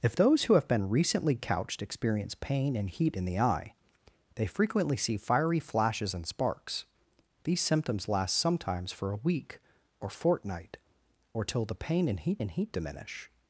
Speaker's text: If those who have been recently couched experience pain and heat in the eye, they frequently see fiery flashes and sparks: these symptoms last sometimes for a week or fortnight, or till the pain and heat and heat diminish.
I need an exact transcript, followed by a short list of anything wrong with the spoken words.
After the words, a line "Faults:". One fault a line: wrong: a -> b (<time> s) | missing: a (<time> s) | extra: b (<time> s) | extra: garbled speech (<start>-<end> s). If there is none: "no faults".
If those who have been recently couched experience pain and heat in the eye, they frequently see fiery flashes and sparks: these symptoms last sometimes for a week or fortnight, or till the pain and heat and heat diminish.
Faults:
no faults